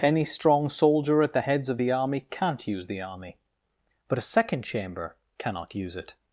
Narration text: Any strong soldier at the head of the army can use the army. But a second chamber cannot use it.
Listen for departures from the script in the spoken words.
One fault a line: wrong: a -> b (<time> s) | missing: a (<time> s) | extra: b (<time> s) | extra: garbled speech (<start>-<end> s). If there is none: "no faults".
wrong: head -> heads (1.4 s)
wrong: can -> can't (2.3 s)